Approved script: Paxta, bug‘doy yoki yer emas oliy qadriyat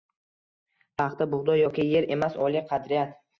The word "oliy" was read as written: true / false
true